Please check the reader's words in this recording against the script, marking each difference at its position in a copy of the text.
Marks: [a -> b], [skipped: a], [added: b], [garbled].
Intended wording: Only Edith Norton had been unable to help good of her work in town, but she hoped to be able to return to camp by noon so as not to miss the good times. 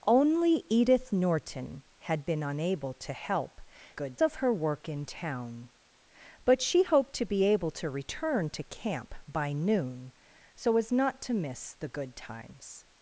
Only Edith Norton had been unable to help good of her work in town, but she hoped to be able to return to camp by noon so as not to miss the good times.